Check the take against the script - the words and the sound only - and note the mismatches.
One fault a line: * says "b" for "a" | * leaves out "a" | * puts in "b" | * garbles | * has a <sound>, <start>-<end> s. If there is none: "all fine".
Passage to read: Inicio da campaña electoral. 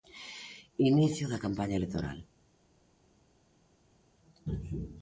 all fine